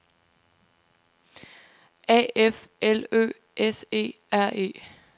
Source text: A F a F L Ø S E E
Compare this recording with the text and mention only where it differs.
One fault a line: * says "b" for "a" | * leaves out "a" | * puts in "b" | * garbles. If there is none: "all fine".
* leaves out "a F"
* puts in "R"